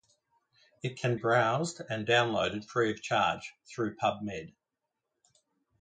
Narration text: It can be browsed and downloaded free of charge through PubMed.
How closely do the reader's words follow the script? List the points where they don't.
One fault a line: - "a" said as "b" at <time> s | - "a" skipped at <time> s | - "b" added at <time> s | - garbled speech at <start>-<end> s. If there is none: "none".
- "be" skipped at 1.1 s